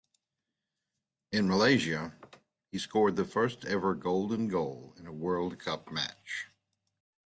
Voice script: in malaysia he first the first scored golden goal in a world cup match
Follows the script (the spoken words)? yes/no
no